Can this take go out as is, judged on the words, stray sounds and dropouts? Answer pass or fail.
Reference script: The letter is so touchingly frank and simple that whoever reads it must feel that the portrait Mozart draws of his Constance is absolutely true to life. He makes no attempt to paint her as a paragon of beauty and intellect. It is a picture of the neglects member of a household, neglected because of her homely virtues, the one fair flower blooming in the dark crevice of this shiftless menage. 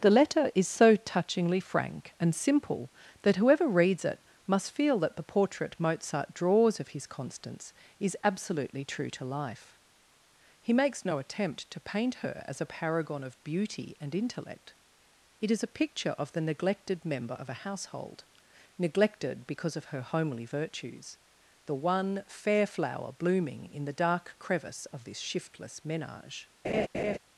fail